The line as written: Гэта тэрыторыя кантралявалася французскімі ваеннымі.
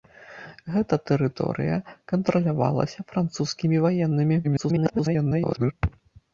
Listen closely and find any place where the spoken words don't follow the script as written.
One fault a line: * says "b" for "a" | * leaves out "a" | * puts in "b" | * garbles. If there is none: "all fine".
* garbles